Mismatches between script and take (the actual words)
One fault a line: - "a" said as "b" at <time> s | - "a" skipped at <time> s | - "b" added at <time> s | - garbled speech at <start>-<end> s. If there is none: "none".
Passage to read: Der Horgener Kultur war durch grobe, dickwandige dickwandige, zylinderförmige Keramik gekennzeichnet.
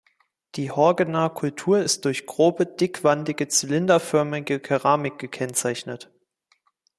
- "Der" said as "Die" at 0.6 s
- "war" said as "ist" at 1.8 s
- "dickwandige" skipped at 3.5 s